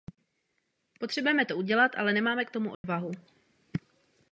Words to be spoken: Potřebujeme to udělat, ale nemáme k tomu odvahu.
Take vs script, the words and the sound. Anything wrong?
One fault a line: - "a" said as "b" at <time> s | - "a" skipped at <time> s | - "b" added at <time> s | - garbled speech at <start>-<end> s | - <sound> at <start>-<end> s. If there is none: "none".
- dropout at 2.7-2.8 s